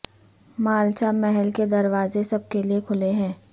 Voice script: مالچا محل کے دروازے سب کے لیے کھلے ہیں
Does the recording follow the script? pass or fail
pass